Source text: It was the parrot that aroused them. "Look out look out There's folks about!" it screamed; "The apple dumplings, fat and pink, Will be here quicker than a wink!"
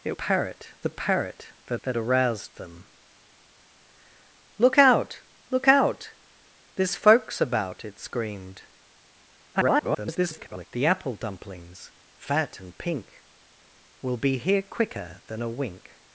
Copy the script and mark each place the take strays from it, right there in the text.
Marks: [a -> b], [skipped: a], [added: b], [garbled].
It [was -> parrot] the parrot that [added: that] aroused them. "Look out look out There's folks about!" it screamed; [garbled] "The apple dumplings, fat and pink, Will be here quicker than a wink!"